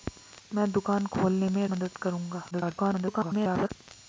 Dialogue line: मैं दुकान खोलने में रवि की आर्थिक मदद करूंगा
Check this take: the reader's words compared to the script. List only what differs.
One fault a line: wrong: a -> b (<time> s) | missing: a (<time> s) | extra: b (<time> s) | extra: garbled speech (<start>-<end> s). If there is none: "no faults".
missing: रवि की आर्थिक (1.7 s)
extra: garbled speech (2.5-3.7 s)